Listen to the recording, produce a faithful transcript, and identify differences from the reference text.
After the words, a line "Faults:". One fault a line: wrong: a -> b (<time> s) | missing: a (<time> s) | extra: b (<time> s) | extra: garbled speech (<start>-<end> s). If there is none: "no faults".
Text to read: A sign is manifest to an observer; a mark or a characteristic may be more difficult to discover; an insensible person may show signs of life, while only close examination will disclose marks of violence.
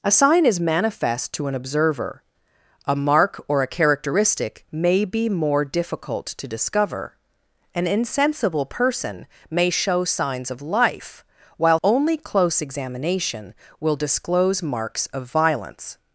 A sign is manifest to an observer; a mark or a characteristic may be more difficult to discover; an insensible person may show signs of life, while only close examination will disclose marks of violence.
Faults:
no faults